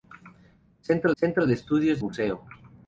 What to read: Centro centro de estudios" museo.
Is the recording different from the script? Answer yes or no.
no